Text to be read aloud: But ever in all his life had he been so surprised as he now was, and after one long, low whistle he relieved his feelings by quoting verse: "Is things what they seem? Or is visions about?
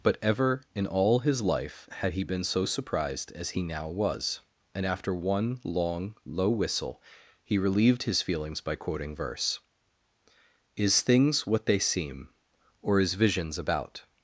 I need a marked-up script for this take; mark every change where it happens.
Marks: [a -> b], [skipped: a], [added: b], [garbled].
But ever in all his life had he been so surprised as he now was, and after one long, low whistle he relieved his feelings by quoting verse: "Is things what they seem? Or is visions about?